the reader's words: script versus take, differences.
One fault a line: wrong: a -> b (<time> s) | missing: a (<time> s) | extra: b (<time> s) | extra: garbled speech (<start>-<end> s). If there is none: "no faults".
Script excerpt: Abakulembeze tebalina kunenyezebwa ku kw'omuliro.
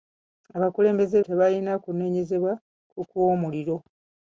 no faults